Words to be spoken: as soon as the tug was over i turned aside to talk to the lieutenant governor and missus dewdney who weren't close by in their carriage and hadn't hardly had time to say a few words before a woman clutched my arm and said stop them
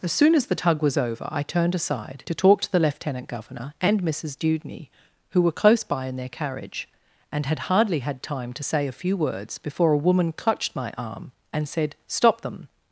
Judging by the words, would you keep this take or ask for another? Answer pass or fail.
fail